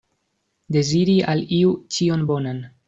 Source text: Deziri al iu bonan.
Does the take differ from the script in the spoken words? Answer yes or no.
yes